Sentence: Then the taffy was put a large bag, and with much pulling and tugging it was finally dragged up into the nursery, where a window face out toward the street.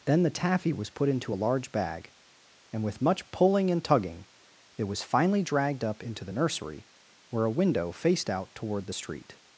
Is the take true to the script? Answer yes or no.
no